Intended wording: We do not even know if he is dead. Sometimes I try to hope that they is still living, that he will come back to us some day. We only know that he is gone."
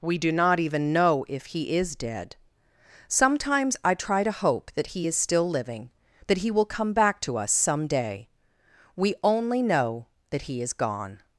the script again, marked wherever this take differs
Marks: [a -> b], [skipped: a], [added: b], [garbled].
We do not even know if he is dead. Sometimes I try to hope that [they -> he] is still living, that he will come back to us some day. We only know that he is gone."